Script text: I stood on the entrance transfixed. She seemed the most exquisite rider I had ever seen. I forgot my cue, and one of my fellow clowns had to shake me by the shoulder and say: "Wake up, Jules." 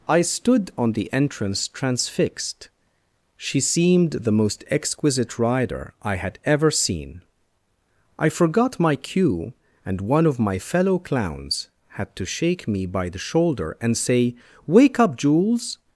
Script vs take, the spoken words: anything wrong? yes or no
no